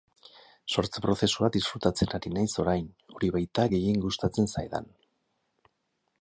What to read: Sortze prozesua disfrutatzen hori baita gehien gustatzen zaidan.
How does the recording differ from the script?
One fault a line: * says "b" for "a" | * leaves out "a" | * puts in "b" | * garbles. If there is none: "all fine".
* puts in "ari naiz orain"